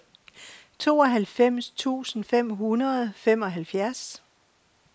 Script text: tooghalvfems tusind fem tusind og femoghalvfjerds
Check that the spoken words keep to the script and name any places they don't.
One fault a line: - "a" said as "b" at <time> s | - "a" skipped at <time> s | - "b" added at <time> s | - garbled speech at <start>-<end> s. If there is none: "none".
- "tusind" said as "hundrede" at 2.5 s